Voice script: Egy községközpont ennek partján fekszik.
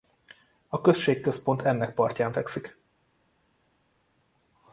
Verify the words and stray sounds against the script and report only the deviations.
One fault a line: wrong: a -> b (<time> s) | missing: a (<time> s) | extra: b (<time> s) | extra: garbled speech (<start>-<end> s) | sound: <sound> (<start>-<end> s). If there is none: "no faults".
wrong: Egy -> A (0.7 s)